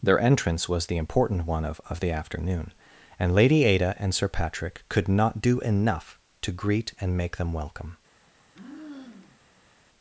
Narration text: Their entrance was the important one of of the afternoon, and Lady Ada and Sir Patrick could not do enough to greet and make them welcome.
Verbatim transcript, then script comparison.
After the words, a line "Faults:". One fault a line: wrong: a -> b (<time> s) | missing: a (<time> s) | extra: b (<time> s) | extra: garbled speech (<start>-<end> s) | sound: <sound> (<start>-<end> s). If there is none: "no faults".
Their entrance was the important one of of the afternoon, and Lady Ada and Sir Patrick could not do enough to greet and make them welcome.
Faults:
sound: sigh (8.3-9.8 s)